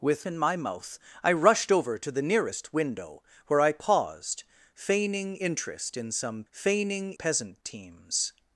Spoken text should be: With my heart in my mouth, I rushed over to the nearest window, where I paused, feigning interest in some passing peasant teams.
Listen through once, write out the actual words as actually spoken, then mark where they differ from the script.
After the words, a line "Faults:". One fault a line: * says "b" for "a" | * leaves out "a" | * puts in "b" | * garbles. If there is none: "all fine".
With in my mouth, I rushed over to the nearest window, where I paused, feigning interest in some feigning peasant teams.
Faults:
* leaves out "my heart"
* says "feigning" for "passing"